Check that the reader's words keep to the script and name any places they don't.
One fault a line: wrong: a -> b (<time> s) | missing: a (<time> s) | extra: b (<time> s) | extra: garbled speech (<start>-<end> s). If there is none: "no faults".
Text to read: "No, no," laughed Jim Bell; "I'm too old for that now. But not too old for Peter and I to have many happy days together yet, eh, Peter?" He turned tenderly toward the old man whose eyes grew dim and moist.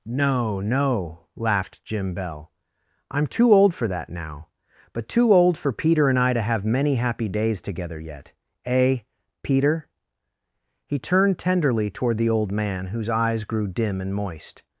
missing: not (5.1 s)